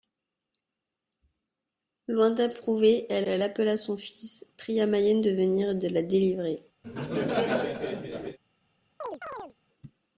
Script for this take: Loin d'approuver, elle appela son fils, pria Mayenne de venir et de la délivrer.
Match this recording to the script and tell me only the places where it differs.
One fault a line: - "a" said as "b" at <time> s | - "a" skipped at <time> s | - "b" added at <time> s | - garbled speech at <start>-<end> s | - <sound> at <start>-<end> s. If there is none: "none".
- "elle" added at 3.2 s
- laugh at 6.8-8.4 s
- chirp at 9.0-9.5 s